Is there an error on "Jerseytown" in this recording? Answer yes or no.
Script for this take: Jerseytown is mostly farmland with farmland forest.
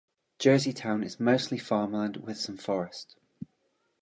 no